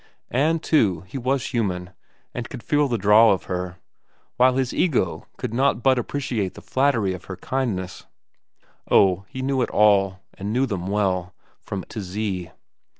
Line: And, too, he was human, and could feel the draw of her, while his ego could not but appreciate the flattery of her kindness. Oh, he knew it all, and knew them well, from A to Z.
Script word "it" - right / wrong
right